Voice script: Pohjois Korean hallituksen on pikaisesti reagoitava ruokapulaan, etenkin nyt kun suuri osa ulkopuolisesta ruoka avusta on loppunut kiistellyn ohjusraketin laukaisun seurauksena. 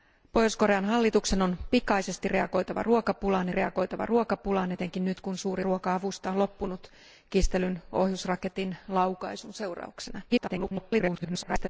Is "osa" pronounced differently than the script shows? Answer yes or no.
yes